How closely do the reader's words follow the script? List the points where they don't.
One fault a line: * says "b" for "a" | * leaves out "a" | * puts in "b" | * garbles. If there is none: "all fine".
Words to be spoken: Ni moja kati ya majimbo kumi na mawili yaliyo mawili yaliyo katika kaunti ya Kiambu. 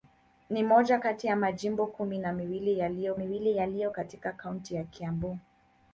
all fine